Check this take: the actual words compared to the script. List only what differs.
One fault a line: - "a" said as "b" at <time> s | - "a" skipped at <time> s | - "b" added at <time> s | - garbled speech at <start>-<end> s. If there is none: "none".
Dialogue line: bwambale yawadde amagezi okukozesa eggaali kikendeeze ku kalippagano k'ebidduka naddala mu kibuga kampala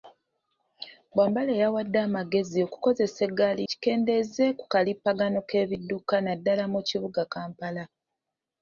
none